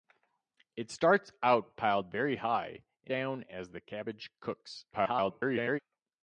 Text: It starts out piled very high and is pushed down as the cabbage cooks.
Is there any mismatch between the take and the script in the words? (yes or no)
yes